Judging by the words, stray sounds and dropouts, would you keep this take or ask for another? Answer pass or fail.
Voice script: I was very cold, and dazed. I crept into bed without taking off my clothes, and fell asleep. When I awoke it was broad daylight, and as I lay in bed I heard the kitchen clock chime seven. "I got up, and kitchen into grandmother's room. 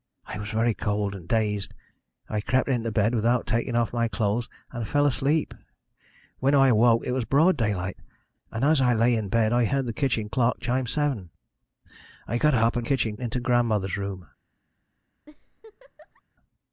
fail